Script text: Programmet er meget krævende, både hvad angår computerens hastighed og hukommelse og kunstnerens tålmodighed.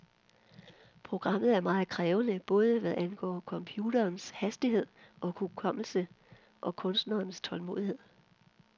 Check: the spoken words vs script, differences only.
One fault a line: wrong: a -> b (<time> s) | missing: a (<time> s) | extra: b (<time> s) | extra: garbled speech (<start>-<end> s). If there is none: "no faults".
no faults